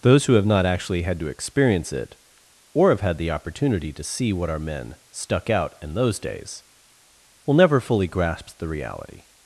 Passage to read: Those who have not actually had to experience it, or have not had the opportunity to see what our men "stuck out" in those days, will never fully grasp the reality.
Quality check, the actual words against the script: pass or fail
fail